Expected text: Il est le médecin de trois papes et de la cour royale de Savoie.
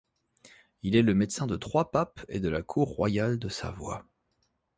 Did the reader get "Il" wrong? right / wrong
right